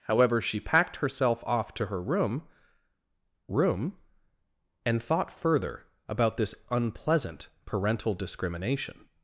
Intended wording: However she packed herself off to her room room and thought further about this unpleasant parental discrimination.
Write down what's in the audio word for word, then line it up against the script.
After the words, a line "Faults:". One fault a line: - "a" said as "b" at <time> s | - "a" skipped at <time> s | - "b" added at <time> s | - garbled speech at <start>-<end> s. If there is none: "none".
However she packed herself off to her room room and thought further about this unpleasant parental discrimination.
Faults:
none